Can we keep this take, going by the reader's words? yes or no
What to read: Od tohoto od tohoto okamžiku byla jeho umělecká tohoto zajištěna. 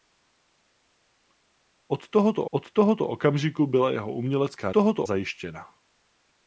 yes